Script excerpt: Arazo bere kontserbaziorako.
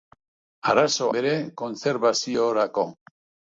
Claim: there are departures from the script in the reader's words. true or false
false